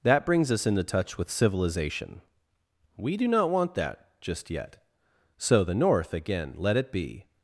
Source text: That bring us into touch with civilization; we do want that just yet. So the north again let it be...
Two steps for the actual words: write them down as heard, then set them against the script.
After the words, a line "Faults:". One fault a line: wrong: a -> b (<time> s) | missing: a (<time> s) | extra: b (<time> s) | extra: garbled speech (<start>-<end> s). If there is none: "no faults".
That brings us into touch with civilization; we do not want that just yet. So the north again let it be...
Faults:
wrong: bring -> brings (0.2 s)
extra: not (3.3 s)